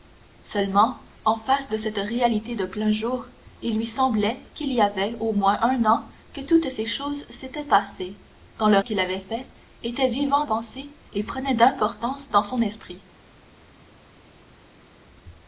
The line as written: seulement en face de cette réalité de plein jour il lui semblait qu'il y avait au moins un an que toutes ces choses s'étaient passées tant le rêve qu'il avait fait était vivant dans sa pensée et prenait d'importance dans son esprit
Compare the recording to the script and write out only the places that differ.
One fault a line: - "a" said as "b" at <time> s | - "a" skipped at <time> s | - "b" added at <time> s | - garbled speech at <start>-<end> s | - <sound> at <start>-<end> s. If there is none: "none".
- "rêve" skipped at 8.8 s
- "dans sa" skipped at 10.4 s